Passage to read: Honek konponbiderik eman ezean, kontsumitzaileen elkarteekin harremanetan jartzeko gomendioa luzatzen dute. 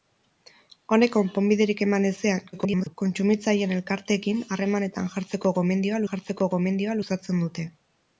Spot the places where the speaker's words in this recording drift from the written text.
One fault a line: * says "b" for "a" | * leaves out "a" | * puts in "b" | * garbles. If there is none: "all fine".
* garbles
* puts in "jartzeko gomendioa"